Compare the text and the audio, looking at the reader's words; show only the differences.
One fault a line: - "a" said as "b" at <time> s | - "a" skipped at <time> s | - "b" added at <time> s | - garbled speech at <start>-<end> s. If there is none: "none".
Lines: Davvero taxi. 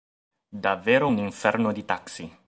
- "un inferno di" added at 1.1 s